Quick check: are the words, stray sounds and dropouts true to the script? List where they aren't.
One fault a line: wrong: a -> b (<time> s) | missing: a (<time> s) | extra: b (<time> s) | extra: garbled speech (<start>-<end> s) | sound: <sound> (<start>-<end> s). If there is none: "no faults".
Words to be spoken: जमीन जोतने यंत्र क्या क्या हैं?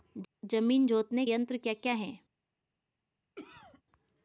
sound: cough (3.4-3.8 s)